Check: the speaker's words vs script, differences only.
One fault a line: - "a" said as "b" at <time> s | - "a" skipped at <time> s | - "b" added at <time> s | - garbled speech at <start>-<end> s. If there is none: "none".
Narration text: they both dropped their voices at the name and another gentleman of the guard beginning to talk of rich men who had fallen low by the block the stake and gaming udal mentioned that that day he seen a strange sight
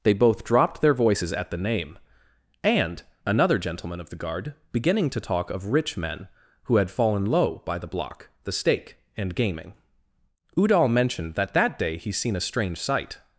none